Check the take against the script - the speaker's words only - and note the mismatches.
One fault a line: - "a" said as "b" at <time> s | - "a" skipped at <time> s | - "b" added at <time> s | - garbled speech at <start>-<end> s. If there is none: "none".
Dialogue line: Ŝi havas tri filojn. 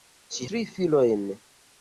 - "havas" skipped at 0.5 s